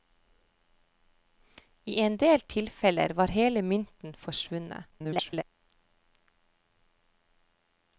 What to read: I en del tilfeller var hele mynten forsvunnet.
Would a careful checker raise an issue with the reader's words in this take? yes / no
yes